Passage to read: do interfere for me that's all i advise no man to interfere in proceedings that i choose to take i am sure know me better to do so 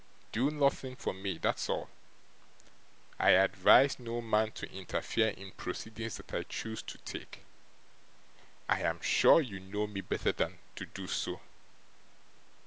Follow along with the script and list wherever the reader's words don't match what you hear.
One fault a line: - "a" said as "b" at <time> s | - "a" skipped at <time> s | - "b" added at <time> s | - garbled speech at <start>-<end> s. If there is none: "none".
- "interfere" said as "nothing" at 0.5 s
- "you" added at 9.4 s
- "than" added at 10.3 s